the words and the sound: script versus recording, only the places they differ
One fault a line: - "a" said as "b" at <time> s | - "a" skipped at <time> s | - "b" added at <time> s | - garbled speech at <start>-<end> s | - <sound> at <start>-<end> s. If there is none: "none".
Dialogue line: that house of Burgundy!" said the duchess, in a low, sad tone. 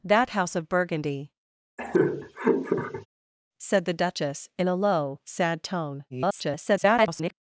- laugh at 1.8-3.1 s
- garbled speech at 6.1-7.3 s